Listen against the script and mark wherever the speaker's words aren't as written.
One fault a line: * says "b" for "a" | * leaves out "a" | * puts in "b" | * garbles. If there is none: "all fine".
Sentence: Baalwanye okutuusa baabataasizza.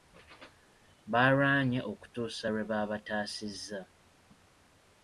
* puts in "lwe"